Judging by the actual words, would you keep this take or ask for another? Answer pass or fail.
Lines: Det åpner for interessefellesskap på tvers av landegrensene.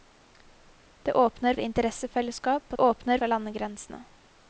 fail